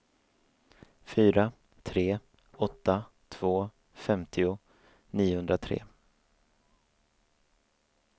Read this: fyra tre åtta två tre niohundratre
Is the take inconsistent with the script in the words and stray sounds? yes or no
yes